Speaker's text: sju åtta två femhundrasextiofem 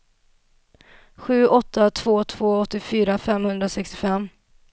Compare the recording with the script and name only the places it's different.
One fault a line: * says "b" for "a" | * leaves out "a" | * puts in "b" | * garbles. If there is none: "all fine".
* puts in "två åttiofyra"